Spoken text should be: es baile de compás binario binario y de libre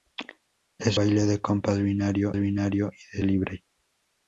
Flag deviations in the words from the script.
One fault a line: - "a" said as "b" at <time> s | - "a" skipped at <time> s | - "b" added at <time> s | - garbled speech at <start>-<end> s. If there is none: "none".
none